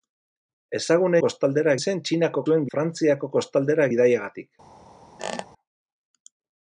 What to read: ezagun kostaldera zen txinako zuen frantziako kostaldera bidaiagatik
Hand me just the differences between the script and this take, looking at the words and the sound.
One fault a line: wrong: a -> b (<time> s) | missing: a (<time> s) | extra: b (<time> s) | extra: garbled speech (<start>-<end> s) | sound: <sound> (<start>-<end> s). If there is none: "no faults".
sound: squeak (5.2-5.5 s)